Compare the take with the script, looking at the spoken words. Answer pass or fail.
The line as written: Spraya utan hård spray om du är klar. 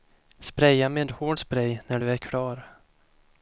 fail